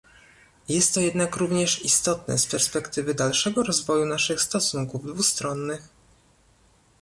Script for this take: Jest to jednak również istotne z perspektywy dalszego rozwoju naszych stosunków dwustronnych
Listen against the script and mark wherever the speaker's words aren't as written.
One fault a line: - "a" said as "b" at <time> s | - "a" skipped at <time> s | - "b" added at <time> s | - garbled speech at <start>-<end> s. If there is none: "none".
none